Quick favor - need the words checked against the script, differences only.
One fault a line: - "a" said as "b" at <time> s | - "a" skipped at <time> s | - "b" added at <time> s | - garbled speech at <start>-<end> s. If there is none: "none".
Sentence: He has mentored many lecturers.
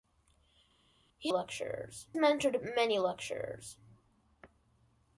- "has" said as "lecturers" at 1.3 s